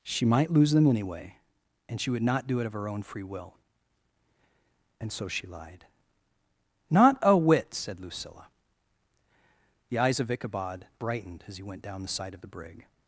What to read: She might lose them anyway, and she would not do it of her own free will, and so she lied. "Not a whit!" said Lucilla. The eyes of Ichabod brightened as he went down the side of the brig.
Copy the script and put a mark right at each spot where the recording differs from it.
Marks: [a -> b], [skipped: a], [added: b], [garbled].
She might lose them anyway, and she would not do it of her own free will, and so she lied. "Not a whit!" said Lucilla. The eyes of Ichabod brightened as he went down the side of the brig.